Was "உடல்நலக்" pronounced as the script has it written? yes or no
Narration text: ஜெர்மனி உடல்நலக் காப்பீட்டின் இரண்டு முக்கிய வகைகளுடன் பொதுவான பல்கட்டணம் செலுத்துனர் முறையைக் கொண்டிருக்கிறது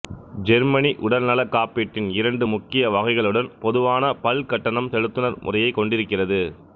yes